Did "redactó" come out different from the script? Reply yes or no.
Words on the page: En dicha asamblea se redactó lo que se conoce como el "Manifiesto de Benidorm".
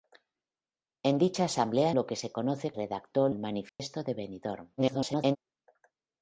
yes